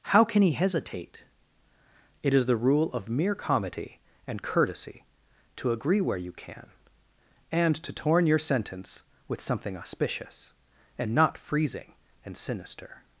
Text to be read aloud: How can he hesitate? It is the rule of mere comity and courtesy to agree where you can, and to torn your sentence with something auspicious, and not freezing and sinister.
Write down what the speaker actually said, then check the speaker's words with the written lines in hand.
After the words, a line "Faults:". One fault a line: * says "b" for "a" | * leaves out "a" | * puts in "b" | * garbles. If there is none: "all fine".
How can he hesitate? It is the rule of mere comity and courtesy to agree where you can, and to torn your sentence with something auspicious, and not freezing and sinister.
Faults:
all fine